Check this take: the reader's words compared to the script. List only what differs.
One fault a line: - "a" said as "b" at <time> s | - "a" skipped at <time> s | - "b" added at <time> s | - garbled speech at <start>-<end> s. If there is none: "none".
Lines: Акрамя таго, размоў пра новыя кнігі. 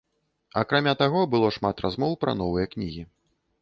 - "было шмат" added at 1.4 s